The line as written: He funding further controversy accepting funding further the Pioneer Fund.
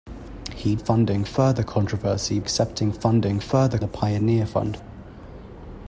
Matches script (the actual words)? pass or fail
pass